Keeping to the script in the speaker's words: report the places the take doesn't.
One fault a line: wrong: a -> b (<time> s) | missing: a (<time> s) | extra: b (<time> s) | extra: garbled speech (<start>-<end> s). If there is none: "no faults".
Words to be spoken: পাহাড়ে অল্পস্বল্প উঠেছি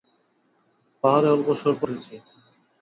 no faults